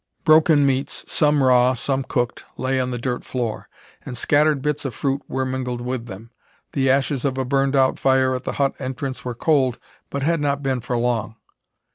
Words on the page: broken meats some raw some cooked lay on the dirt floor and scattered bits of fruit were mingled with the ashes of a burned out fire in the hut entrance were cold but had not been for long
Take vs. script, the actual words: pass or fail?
fail